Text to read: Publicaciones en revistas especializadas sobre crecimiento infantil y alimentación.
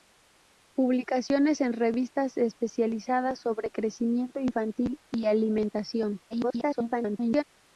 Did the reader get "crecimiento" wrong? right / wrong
right